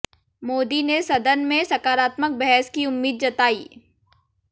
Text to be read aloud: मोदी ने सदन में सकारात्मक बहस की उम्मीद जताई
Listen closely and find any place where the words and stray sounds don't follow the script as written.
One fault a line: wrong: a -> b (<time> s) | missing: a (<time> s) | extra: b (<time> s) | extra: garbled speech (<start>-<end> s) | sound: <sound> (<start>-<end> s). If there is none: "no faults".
no faults